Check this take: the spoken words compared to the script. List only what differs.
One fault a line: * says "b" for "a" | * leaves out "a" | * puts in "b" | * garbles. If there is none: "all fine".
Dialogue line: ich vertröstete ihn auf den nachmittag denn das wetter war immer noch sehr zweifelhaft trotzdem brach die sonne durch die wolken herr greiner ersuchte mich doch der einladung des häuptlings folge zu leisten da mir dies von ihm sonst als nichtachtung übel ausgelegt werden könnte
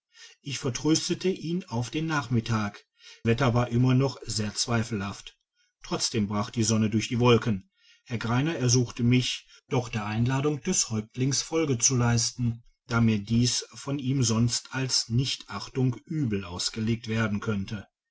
* leaves out "denn das"